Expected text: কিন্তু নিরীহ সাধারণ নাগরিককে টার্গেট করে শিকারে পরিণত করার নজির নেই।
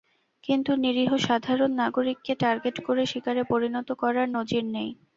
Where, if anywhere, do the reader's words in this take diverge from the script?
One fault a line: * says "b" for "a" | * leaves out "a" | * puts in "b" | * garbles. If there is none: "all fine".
all fine